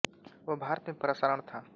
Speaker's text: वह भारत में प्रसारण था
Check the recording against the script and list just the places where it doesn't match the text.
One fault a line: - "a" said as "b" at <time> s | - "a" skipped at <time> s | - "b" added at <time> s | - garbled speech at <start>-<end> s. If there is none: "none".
none